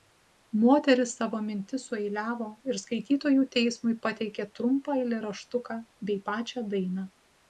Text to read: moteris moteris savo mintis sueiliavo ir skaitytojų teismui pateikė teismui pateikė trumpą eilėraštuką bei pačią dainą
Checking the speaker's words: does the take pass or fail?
fail